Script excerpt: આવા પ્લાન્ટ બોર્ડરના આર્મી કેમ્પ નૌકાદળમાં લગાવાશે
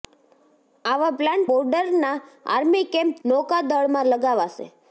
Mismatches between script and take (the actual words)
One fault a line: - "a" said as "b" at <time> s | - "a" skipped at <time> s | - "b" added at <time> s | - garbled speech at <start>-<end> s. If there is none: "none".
none